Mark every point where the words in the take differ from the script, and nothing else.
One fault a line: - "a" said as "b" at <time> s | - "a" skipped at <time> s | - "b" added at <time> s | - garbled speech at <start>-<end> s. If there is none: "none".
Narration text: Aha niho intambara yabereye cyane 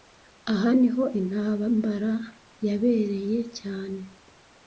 none